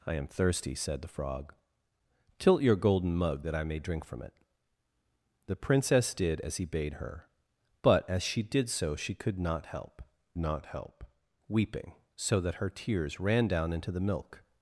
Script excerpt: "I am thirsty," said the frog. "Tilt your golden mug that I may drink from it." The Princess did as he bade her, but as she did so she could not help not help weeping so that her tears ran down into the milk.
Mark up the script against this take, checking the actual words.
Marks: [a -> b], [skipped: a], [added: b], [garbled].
"I am thirsty," said the frog. "Tilt your golden mug that I may drink from it." The Princess did as he bade her, but as she did so she could not help not help weeping so that her tears ran down into the milk.